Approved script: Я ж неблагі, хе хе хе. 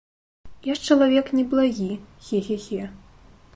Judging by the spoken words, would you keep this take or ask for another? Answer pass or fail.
fail